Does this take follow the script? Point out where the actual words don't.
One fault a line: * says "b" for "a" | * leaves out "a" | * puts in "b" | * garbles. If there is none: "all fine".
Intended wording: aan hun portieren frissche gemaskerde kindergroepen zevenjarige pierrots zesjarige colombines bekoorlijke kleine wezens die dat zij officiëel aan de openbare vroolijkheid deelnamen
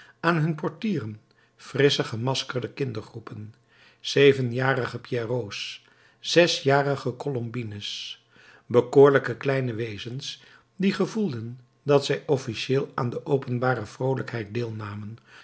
* puts in "gevoelden"